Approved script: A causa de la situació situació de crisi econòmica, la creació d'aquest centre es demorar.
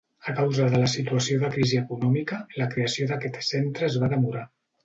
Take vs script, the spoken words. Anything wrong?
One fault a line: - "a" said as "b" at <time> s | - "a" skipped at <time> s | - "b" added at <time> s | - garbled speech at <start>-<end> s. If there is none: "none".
- "situació" skipped at 1.4 s
- "va" added at 4.0 s